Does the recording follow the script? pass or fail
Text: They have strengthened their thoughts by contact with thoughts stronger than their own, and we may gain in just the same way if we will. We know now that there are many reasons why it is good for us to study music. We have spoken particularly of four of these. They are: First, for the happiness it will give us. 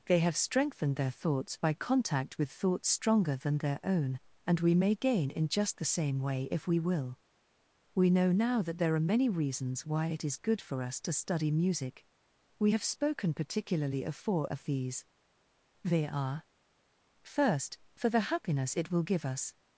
pass